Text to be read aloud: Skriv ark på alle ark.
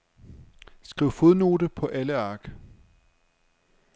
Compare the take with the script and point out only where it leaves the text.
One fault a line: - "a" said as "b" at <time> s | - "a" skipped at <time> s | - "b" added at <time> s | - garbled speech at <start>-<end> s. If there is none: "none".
- "ark" said as "fodnote" at 1.1 s